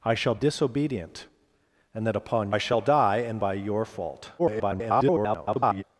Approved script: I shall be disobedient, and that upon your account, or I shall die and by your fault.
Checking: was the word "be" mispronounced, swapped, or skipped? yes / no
yes